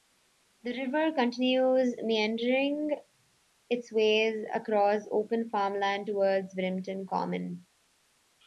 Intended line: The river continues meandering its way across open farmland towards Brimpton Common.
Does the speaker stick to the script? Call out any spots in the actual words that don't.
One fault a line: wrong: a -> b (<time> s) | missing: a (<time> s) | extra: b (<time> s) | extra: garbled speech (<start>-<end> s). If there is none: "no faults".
no faults